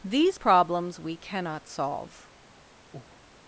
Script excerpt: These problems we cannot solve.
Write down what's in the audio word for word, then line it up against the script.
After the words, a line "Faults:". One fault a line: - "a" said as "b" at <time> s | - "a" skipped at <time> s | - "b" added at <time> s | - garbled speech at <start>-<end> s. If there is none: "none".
These problems we cannot solve.
Faults:
none